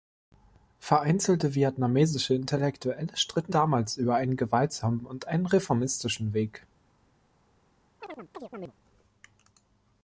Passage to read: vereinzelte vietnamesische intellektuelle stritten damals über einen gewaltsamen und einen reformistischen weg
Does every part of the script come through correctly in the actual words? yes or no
yes